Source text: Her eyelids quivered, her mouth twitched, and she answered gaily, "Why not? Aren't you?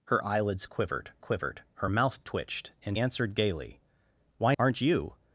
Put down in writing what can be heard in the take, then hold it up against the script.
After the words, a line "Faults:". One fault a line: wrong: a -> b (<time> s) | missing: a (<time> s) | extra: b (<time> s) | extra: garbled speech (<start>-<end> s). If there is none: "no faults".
Her eyelids quivered quivered, her mouth twitched, and answered gaily, "Why? Aren't you?
Faults:
extra: quivered (1.2 s)
missing: she (3.0 s)
missing: not (4.5 s)